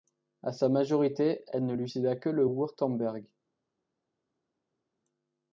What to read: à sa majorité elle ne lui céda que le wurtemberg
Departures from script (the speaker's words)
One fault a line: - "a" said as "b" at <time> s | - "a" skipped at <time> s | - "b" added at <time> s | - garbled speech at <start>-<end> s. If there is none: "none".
none